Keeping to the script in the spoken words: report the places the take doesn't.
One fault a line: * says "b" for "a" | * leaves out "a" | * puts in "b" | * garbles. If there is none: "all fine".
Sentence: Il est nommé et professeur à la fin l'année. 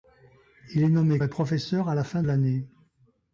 all fine